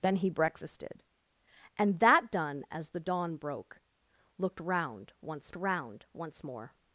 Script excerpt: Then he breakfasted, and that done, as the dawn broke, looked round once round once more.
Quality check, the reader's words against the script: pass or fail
pass